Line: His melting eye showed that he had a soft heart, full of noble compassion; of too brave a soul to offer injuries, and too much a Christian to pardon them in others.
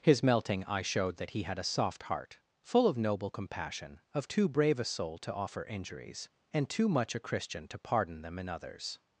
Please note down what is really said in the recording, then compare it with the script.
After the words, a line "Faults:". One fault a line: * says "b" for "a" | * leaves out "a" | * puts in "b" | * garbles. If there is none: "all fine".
His melting eye showed that he had a soft heart, full of noble compassion; of too brave a soul to offer injuries, and too much a Christian to pardon them in others.
Faults:
all fine